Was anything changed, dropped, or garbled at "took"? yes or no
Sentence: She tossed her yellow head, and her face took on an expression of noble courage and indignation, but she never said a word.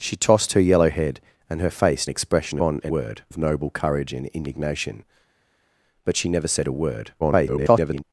yes